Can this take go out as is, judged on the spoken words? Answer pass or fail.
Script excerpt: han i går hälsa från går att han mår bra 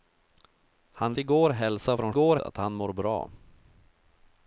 pass